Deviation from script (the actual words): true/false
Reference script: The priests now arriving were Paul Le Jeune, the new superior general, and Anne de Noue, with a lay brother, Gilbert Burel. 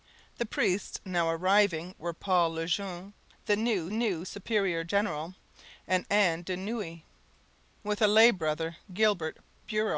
true